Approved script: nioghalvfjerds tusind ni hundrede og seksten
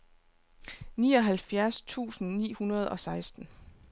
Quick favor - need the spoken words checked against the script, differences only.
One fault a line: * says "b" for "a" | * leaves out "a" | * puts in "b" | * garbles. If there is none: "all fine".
all fine